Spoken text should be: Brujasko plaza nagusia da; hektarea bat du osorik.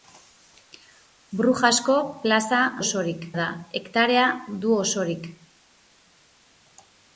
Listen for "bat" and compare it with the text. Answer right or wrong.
wrong